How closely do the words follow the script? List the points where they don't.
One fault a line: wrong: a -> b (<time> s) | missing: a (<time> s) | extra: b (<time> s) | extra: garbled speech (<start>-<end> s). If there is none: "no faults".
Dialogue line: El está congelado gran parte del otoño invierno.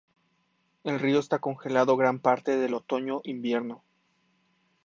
extra: río (1.0 s)